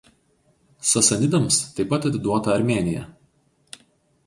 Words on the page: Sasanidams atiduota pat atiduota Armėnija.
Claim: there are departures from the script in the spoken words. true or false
true